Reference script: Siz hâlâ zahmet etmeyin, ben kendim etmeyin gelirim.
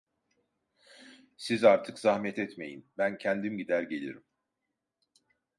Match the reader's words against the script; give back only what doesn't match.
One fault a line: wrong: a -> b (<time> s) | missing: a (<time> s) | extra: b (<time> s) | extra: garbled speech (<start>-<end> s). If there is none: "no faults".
wrong: hâlâ -> artık (1.6 s)
wrong: etmeyin -> gider (3.6 s)